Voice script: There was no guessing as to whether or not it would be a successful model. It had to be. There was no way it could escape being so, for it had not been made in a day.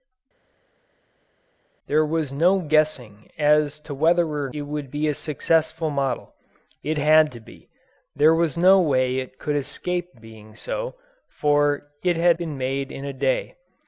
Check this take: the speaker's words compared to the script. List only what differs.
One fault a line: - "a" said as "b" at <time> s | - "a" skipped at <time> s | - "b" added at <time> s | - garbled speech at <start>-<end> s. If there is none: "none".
- "not" skipped at 4.5 s
- "not" skipped at 12.4 s